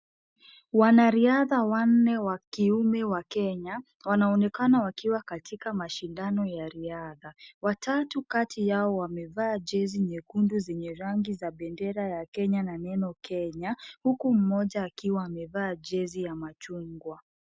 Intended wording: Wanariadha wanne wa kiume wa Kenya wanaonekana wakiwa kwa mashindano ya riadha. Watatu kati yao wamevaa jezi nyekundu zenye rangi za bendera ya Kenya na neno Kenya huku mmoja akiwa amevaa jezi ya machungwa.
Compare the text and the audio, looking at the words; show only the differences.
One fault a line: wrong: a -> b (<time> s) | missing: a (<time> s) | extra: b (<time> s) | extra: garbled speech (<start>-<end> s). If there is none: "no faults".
wrong: kwa -> katika (5.2 s)